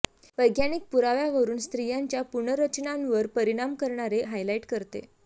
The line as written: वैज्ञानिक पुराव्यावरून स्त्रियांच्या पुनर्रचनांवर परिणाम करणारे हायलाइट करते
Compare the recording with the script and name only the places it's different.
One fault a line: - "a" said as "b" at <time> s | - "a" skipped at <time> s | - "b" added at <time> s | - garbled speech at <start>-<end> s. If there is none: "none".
none